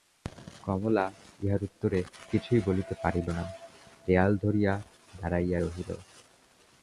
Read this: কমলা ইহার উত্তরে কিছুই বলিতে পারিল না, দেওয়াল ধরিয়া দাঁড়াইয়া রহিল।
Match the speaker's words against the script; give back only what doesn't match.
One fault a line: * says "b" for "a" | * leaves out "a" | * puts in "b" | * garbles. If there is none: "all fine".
all fine